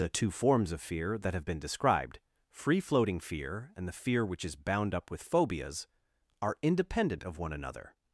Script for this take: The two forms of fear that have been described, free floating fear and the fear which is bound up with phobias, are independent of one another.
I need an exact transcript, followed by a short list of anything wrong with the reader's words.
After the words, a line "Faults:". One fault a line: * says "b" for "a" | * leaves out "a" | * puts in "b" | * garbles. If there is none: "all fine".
The two forms of fear that have been described, free floating fear and the fear which is bound up with phobias, are independent of one another.
Faults:
all fine